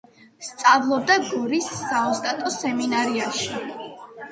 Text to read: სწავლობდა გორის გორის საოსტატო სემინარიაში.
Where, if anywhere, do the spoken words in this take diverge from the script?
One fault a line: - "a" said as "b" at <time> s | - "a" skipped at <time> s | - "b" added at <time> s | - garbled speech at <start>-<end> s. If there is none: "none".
- "გორის" skipped at 1.7 s